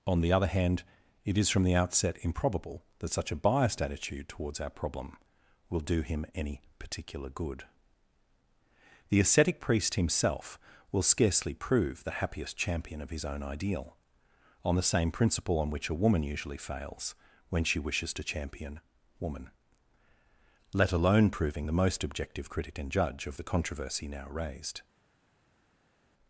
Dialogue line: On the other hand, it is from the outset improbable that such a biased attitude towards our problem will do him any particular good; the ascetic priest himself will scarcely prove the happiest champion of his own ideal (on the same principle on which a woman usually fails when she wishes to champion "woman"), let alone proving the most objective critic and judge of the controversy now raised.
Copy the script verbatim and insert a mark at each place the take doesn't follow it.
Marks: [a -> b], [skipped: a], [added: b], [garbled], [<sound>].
On the other hand, it is from the outset improbable that such a biased attitude towards our problem will do him any particular good; the ascetic priest himself will scarcely prove the happiest champion of his own ideal (on the same principle on which a woman usually fails when she wishes to champion "woman"), let alone proving the most objective critic and judge of the controversy now raised.